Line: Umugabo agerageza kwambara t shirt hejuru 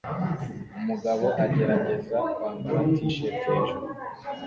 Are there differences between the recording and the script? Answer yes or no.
no